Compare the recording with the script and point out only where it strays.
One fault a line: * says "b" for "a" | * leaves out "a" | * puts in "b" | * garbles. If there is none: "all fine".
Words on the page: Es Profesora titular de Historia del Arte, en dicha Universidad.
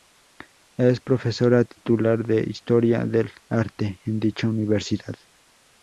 all fine